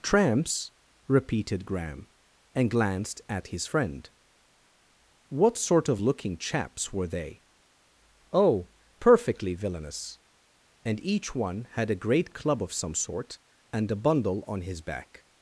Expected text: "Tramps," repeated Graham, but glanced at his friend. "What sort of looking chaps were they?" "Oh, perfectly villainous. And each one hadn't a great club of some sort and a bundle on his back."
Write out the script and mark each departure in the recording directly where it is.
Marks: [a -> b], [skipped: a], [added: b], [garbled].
"Tramps," repeated Graham, [but -> and] glanced at his friend. "What sort of looking chaps were they?" "Oh, perfectly villainous. And each one [hadn't -> had] a great club of some sort and a bundle on his back."